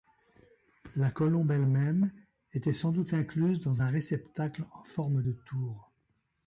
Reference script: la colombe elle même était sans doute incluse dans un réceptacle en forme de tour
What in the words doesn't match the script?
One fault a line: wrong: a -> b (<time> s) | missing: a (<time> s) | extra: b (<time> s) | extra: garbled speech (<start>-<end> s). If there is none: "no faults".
no faults